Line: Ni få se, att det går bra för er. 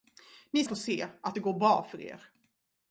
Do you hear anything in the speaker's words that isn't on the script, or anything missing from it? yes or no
no